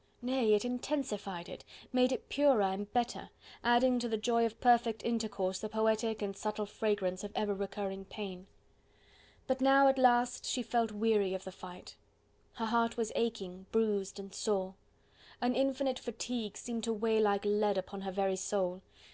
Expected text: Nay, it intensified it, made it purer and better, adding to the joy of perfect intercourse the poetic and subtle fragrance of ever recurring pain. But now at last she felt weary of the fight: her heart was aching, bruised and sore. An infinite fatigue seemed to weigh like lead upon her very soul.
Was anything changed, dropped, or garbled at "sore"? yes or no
no